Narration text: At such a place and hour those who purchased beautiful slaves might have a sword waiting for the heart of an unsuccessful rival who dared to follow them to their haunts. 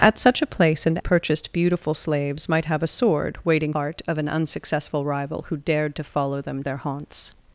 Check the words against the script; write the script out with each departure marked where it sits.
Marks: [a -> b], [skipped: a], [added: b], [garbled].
At such a place and [skipped: hour those who] purchased beautiful slaves might have a sword waiting [skipped: for the] heart of an unsuccessful rival who dared to follow them [skipped: to] their haunts.